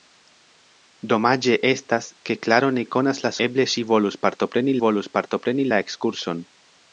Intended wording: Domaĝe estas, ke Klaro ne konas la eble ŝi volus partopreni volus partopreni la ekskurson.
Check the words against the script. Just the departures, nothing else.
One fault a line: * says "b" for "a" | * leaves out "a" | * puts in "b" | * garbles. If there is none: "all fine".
all fine